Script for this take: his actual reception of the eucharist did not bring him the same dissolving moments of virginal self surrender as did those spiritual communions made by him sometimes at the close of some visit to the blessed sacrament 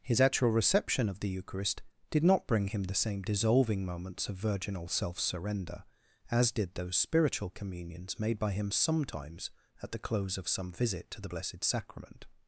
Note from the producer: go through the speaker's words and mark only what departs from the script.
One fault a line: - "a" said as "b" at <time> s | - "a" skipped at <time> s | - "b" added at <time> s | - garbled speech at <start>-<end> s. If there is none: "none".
none